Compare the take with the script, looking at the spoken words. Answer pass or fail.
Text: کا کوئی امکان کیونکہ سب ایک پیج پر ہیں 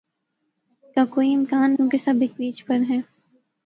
pass